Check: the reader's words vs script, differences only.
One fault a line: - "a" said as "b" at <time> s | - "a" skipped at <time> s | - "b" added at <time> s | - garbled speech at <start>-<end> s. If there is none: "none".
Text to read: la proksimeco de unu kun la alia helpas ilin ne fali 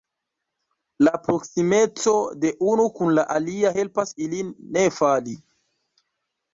none